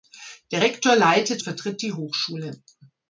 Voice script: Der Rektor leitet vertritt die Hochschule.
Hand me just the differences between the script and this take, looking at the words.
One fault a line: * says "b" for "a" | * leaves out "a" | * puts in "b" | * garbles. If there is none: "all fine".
all fine